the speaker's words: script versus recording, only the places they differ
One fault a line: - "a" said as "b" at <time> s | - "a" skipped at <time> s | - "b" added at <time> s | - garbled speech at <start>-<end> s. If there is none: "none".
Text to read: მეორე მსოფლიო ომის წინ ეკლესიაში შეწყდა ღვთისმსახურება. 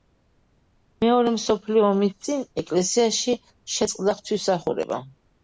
none